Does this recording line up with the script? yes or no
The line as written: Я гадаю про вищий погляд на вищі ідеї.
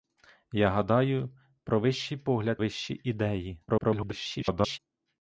no